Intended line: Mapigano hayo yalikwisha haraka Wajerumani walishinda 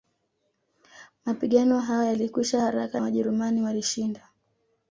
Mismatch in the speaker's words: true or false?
false